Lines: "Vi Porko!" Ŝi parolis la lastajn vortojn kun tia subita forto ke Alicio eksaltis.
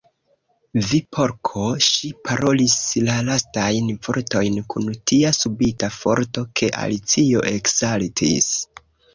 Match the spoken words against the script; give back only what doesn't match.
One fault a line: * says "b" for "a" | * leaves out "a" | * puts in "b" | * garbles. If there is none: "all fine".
all fine